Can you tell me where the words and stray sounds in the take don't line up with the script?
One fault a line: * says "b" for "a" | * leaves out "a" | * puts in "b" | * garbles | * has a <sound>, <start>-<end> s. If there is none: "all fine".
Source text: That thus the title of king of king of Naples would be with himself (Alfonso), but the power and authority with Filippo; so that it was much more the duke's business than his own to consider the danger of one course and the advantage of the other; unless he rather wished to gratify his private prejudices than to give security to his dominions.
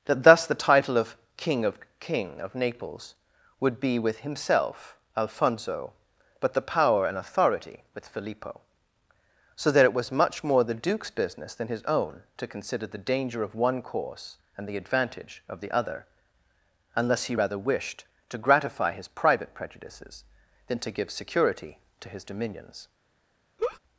* has a laugh, 23.6-23.8 s